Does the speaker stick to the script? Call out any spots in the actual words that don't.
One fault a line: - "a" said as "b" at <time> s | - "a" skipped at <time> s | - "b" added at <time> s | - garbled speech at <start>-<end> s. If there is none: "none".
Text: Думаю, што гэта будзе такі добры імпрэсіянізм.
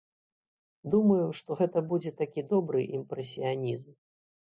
none